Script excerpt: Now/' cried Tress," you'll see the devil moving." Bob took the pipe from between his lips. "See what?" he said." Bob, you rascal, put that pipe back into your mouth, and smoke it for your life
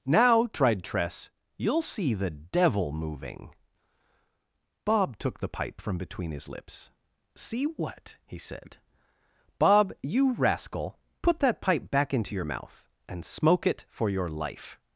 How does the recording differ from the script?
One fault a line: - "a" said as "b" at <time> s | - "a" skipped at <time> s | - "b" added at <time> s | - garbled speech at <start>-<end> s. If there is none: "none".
- "cried" said as "tried" at 0.5 s